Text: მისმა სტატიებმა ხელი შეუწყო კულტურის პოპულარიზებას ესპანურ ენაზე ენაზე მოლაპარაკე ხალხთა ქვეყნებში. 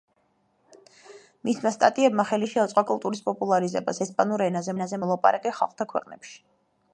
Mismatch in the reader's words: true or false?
false